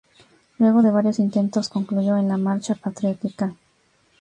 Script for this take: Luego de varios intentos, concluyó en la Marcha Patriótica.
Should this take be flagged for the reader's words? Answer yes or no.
no